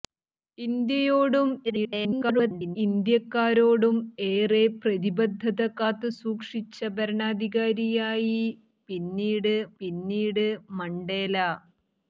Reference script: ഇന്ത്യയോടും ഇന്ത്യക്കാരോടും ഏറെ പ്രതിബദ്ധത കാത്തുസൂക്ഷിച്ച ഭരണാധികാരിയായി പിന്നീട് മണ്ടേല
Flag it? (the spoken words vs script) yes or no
yes